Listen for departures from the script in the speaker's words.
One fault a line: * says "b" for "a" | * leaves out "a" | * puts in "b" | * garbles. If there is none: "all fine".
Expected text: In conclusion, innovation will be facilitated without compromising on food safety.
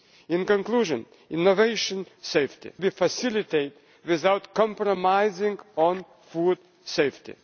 * says "safety" for "will"